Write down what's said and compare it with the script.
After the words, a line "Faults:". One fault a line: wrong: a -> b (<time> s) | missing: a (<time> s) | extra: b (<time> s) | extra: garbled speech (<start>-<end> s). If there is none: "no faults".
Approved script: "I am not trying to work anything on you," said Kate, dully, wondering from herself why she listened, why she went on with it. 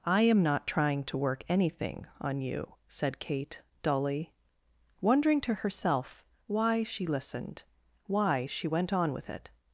"I am not trying to work anything on you," said Kate, dully, wondering to herself why she listened, why she went on with it.
Faults:
wrong: from -> to (5.4 s)